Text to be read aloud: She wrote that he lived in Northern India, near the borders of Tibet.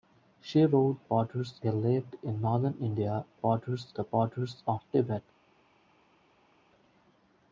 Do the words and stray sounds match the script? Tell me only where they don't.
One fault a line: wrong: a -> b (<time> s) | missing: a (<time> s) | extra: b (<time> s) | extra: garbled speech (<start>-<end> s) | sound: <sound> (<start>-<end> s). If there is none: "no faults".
wrong: that -> borders (1.0 s)
wrong: near -> borders (3.3 s)